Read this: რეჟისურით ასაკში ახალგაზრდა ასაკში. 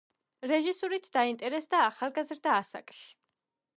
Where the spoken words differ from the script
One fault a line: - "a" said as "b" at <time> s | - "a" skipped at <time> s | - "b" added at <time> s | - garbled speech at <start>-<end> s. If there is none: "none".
- "ასაკში" said as "დაინტერესდა" at 1.2 s